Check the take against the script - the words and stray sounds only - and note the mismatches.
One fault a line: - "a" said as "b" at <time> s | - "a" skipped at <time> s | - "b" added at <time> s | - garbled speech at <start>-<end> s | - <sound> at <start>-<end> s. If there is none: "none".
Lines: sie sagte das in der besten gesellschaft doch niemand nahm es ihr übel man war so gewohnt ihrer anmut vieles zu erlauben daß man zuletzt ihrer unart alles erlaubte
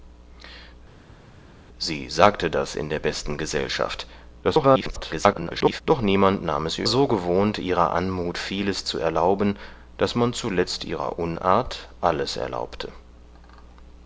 - garbled speech at 4.4-5.8 s
- "übel man war" skipped at 6.9 s